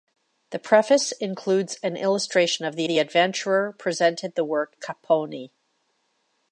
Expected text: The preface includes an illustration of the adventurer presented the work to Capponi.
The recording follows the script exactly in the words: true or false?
false